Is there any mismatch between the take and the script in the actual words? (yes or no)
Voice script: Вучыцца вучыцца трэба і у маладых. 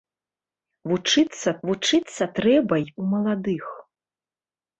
no